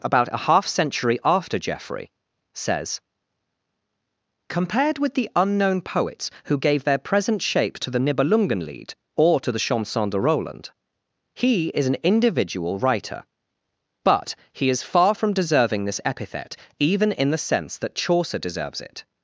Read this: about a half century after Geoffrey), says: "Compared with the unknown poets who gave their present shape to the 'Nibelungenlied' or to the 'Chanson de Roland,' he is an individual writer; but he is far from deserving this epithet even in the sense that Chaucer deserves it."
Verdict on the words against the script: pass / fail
pass